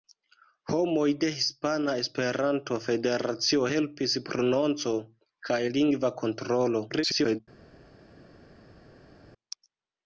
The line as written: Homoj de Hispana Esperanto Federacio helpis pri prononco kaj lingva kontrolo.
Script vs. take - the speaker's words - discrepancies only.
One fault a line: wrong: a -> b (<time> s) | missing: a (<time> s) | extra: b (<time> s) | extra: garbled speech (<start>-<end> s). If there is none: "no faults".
missing: pri (4.1 s)
extra: garbled speech (6.9-7.4 s)